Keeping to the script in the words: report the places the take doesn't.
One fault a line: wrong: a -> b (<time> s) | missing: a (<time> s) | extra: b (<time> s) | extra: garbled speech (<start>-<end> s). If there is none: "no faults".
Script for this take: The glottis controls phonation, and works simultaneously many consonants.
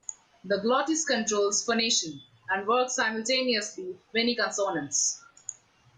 no faults